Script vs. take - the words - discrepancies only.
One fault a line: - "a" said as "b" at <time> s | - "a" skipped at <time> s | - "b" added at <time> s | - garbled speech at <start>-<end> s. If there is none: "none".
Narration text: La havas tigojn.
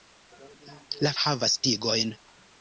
none